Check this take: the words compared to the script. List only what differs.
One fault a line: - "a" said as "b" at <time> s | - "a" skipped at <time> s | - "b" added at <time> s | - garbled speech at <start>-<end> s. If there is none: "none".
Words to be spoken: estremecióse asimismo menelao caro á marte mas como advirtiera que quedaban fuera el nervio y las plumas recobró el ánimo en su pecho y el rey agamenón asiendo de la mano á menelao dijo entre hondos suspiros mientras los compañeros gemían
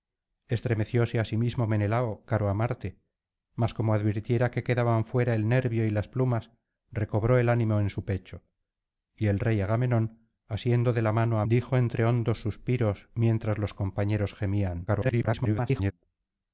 - "menelao" skipped at 11.4 s
- garbled speech at 14.9-15.9 s